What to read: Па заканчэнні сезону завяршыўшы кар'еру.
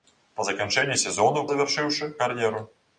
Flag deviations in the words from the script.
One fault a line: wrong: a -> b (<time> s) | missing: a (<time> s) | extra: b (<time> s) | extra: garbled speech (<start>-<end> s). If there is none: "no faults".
no faults